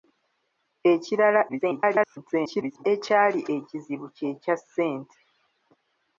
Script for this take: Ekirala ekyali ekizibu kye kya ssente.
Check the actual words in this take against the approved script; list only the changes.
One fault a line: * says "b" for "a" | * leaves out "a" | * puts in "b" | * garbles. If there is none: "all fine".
* garbles